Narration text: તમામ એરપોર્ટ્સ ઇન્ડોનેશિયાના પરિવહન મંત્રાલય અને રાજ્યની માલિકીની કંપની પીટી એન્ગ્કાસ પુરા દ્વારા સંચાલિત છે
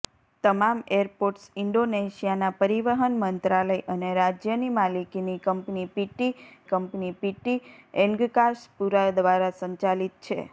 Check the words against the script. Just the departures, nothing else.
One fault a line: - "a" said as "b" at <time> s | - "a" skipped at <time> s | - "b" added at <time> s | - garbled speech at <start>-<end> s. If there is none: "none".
- "કંપની પીટી" added at 6.7 s